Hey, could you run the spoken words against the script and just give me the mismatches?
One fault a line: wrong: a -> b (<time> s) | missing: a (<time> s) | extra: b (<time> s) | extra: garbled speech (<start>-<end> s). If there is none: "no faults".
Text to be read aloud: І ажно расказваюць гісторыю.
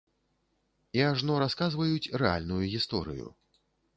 extra: рэальную (2.2 s)